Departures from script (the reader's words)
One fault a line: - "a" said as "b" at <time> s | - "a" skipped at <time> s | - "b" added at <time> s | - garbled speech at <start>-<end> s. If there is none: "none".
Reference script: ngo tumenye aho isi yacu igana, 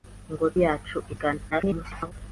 - "tumenye aho isi" skipped at 0.5 s
- garbled speech at 1.5-2.1 s